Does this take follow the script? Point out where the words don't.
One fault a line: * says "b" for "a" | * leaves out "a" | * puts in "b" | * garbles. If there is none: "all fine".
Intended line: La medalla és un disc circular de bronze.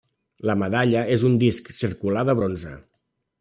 all fine